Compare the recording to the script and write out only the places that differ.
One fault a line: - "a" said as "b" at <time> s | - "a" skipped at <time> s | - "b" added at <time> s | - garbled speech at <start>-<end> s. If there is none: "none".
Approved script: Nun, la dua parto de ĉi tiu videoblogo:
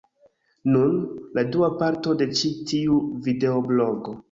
none